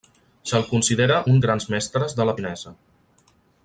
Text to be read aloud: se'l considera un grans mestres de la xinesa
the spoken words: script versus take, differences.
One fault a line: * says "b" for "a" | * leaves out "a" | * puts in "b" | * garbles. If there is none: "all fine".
all fine